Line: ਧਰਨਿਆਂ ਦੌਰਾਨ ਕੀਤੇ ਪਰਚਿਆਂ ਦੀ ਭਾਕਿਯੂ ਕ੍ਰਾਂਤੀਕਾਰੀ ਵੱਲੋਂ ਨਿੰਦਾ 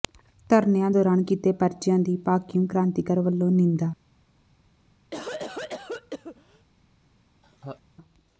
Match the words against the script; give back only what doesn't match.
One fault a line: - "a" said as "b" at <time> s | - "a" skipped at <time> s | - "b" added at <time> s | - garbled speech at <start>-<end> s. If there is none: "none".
none